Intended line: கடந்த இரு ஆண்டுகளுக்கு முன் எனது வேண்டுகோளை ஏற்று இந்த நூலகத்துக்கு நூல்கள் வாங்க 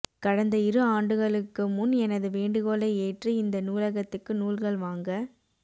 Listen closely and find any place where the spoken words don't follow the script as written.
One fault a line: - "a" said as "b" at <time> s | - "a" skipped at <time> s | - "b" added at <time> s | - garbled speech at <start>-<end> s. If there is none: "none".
none